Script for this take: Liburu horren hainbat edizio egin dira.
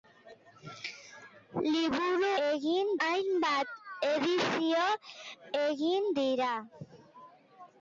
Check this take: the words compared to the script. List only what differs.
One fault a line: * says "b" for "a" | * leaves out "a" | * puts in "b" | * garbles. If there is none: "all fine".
* says "egin" for "horren"